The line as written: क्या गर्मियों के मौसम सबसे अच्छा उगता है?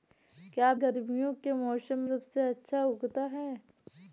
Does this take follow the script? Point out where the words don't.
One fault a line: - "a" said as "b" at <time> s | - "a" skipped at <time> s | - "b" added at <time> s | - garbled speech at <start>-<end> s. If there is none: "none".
none